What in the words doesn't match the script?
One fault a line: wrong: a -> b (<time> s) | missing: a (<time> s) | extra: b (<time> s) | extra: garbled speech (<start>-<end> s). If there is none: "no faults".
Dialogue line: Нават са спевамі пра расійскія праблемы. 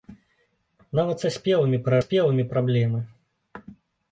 wrong: расійскія -> спевамі (2.0 s)